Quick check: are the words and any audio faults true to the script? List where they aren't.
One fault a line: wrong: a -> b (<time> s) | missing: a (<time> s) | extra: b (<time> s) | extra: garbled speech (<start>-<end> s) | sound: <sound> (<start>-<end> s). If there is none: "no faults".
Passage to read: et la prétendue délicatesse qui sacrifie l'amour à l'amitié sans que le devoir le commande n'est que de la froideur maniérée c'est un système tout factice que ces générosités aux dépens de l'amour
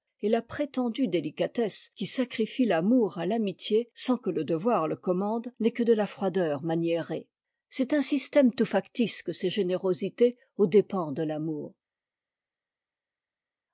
no faults